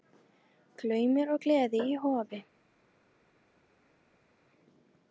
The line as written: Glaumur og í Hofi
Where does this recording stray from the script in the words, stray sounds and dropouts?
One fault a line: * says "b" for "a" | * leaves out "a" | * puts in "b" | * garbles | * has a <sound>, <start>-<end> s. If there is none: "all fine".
* puts in "gleði"